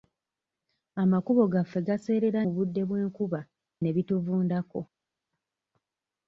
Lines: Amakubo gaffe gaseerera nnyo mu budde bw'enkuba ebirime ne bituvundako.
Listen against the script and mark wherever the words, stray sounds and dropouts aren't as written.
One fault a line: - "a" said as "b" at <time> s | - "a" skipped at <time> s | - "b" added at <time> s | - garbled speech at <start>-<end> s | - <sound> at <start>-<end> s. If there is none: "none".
- "nnyo" skipped at 2.4 s
- "ebirime" skipped at 3.4 s